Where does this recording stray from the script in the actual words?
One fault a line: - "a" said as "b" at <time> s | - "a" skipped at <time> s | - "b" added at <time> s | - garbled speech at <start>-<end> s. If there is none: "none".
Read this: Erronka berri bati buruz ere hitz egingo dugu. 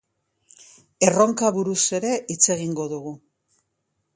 - "berri bati" skipped at 1.5 s